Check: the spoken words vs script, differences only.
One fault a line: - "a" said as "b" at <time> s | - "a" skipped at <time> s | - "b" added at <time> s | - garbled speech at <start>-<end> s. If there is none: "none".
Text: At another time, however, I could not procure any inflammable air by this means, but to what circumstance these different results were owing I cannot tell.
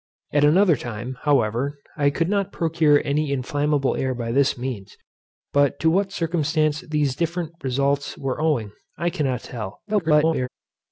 - garbled speech at 9.9-10.5 s